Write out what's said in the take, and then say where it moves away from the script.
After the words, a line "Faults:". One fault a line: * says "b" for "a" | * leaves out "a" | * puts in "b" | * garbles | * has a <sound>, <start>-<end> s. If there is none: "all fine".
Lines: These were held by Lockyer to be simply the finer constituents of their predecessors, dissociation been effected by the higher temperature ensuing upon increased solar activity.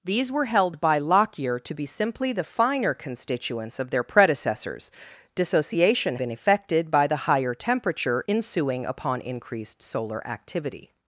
These were held by Lockyer to be simply the finer constituents of their predecessors, dissociation been effected by the higher temperature ensuing upon increased solar activity.
Faults:
all fine